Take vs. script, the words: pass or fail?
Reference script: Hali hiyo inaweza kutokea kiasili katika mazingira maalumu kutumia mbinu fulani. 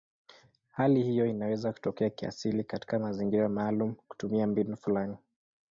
pass